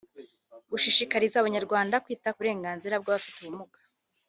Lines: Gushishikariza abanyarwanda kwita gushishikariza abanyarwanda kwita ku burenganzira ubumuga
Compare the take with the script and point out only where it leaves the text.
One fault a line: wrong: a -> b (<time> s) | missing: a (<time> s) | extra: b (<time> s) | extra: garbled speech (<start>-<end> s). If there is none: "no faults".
missing: gushishikariza abanyarwanda kwita (2.3 s)
extra: bw'Abafite (3.0 s)